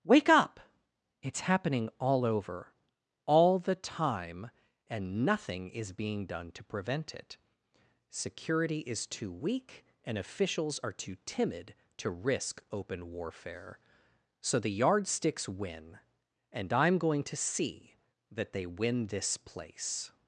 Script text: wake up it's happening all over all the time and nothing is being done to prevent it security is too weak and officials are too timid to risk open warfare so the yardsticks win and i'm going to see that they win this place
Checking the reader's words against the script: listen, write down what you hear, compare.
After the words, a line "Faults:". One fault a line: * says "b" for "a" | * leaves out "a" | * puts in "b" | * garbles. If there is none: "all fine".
wake up it's happening all over all the time and nothing is being done to prevent it security is too weak and officials are too timid to risk open warfare so the yardsticks win and i'm going to see that they win this place
Faults:
all fine